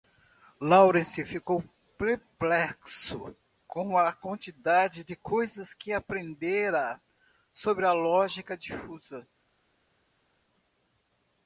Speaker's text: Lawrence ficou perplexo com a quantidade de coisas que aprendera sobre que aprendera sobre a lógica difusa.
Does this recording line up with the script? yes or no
no